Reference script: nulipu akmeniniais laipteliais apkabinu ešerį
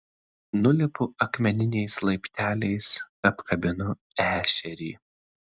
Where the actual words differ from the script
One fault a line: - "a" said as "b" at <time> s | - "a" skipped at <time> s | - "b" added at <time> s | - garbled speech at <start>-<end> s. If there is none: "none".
none